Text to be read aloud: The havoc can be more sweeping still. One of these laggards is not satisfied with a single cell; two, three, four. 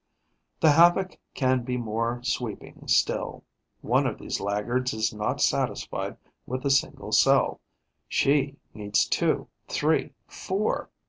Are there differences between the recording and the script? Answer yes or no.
yes